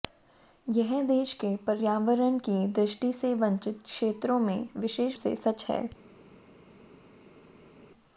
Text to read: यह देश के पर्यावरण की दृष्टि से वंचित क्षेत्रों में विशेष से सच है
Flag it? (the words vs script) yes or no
no